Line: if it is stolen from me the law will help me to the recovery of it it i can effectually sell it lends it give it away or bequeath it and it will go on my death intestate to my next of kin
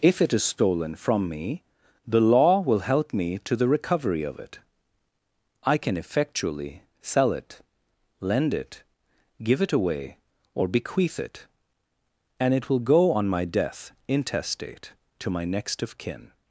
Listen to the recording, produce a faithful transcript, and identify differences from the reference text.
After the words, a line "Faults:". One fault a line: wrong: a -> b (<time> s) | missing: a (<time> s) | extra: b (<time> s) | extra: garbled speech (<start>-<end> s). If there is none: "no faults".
if it is stolen from me the law will help me to the recovery of it i can effectually sell it lend it give it away or bequeath it and it will go on my death intestate to my next of kin
Faults:
missing: it (4.6 s)
wrong: lends -> lend (8.2 s)